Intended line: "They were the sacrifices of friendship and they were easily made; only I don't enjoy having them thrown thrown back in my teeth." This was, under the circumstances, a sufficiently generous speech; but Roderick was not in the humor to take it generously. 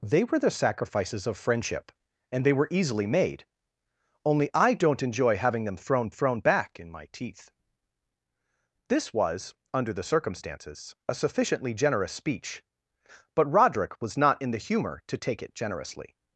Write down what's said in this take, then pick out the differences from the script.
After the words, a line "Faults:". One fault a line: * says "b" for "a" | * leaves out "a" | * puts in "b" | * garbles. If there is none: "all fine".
"They were the sacrifices of friendship and they were easily made; only I don't enjoy having them thrown thrown back in my teeth." This was, under the circumstances, a sufficiently generous speech; but Roderick was not in the humor to take it generously.
Faults:
all fine